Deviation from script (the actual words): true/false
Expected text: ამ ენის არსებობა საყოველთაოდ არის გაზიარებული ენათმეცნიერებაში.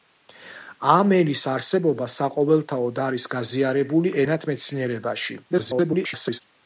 true